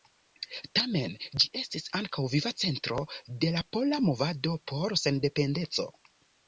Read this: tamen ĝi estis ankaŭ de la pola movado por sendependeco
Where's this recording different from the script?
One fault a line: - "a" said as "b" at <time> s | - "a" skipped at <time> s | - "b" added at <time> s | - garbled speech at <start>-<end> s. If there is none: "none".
- "viva centro" added at 2.4 s